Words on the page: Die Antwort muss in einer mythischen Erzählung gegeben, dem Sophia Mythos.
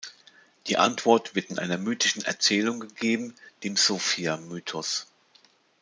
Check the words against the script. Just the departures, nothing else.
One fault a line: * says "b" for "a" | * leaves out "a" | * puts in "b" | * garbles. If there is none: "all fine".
* says "wird" for "muss"